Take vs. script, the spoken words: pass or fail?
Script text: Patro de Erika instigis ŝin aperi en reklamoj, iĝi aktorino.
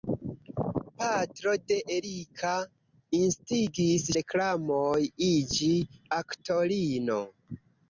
fail